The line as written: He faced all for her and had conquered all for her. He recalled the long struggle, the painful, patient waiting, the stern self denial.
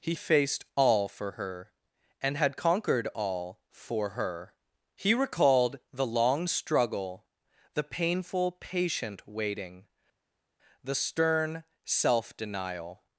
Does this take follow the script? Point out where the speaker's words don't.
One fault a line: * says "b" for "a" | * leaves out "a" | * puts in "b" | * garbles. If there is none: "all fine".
all fine